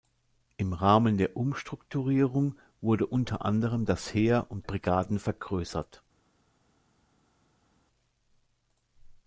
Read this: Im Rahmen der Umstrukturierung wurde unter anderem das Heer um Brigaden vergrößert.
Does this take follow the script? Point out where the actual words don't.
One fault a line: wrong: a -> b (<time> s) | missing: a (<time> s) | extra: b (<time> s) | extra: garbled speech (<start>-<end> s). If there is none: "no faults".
no faults